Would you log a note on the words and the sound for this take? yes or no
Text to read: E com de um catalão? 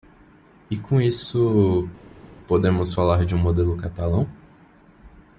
yes